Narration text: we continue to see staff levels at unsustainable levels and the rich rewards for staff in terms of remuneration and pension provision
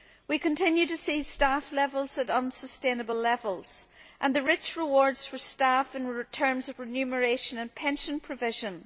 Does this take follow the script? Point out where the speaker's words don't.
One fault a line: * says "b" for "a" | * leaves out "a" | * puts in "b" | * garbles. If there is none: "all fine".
all fine